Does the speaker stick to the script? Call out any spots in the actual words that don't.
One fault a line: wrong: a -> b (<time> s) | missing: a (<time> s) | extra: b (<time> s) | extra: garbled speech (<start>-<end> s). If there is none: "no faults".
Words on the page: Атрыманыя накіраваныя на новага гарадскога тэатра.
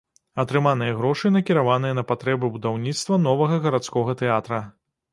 extra: грошы (1.0 s)
extra: патрэбы будаўніцтва (2.1 s)